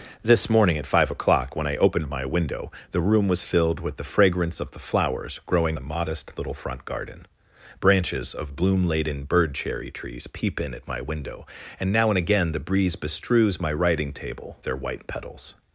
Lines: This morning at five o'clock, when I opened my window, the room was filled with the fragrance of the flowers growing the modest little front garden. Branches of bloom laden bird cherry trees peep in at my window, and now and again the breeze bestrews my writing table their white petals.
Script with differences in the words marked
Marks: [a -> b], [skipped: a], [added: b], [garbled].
This morning at five o'clock, when I opened my window, the room was filled with the fragrance of the flowers growing the modest little front garden. Branches of bloom laden bird cherry trees peep in at my window, and now and again the breeze bestrews my writing table their white petals.